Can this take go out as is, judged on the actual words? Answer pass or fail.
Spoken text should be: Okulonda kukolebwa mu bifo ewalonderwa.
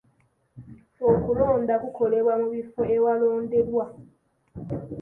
pass